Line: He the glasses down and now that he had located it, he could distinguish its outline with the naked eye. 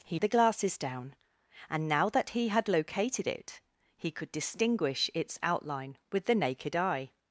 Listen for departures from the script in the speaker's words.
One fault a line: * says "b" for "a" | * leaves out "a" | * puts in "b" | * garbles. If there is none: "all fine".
all fine